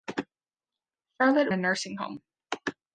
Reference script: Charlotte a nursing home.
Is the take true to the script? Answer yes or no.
yes